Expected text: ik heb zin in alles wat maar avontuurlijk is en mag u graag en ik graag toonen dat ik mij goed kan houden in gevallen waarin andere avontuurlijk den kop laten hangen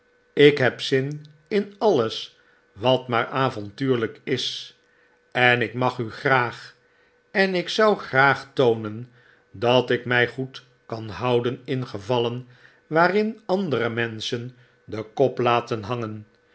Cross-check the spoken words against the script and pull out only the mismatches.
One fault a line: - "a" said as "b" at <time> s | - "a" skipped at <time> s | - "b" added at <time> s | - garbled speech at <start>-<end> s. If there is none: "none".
- "ik" added at 5.6 s
- "zou" added at 7.7 s
- "avontuurlijk" said as "menschen" at 13.9 s